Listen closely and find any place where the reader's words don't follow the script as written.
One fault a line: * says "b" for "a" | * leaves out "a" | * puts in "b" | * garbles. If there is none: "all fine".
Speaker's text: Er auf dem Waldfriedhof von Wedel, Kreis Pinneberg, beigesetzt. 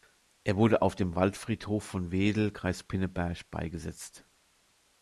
* puts in "wurde"